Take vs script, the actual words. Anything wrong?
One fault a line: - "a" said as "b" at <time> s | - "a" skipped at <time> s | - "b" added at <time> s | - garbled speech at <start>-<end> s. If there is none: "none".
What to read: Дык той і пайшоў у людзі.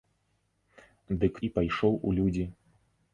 - "той" skipped at 1.3 s